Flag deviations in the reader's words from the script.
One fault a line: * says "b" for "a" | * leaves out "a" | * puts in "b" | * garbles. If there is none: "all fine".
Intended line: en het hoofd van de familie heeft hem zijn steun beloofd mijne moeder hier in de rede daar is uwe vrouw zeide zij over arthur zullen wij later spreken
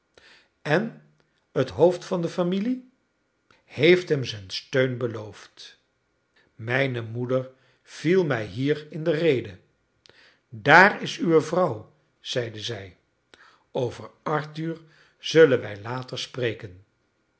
* puts in "viel mij"